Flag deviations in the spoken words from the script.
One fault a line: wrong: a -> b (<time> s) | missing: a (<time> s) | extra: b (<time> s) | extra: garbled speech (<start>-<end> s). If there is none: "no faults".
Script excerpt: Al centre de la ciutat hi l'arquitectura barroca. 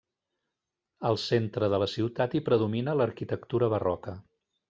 extra: predomina (2.5 s)